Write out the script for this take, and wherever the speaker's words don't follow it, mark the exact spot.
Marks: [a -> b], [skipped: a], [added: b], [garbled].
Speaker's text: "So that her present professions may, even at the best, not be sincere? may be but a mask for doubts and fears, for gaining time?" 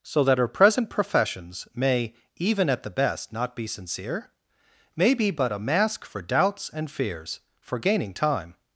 "So that her present professions may, even at the best, not be sincere? may be but a mask for doubts and fears, for gaining time?"